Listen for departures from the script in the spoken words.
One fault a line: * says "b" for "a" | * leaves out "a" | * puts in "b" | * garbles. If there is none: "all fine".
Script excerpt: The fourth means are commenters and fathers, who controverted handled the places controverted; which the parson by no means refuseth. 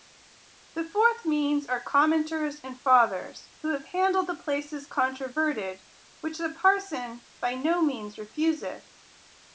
* says "have" for "controverted"